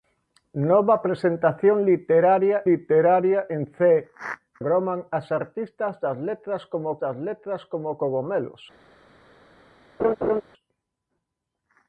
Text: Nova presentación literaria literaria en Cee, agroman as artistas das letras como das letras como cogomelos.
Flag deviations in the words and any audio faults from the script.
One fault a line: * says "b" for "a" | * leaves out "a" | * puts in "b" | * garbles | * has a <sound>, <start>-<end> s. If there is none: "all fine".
* has a laugh, 10.0-10.4 s